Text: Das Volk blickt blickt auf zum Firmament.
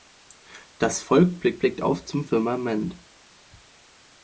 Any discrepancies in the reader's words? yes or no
no